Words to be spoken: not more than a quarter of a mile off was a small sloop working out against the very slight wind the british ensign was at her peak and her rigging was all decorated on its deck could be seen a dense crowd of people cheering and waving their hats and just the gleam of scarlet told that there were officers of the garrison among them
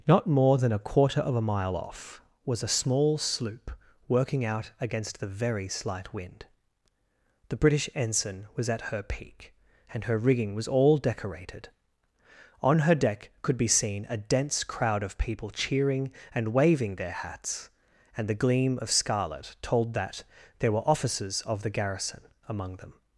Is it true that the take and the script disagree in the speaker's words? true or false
true